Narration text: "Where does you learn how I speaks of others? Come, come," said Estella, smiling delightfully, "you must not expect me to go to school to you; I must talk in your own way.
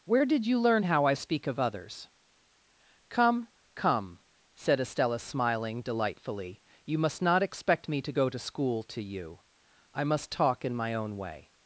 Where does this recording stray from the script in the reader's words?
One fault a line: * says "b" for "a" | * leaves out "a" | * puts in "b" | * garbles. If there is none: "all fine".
* says "did" for "does"
* says "speak" for "speaks"
* says "my" for "your"